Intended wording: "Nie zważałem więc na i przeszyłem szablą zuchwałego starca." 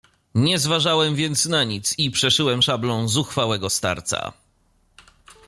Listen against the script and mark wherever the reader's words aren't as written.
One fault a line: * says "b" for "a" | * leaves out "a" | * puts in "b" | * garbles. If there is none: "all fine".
* puts in "nic"